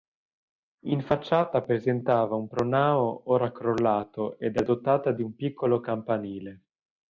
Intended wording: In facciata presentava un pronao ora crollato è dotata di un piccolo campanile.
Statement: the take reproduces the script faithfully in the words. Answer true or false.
false